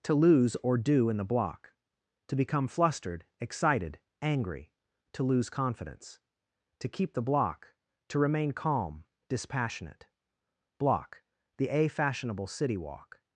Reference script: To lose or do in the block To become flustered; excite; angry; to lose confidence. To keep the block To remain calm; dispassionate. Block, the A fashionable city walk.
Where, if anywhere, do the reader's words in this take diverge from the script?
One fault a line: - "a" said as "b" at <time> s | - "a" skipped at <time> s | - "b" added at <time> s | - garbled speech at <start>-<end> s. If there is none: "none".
- "excite" said as "excited" at 3.4 s